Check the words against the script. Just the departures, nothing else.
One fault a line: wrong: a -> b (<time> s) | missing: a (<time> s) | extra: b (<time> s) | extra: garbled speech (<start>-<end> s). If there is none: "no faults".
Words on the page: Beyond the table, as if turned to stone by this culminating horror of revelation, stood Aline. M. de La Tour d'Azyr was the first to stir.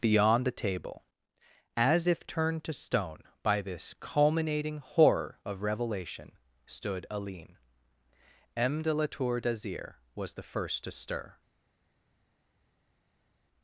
no faults